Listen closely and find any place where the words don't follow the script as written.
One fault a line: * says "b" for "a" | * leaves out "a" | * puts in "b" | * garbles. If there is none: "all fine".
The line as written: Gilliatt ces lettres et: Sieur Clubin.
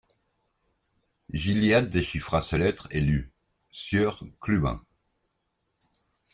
* puts in "déchiffra"
* puts in "lut"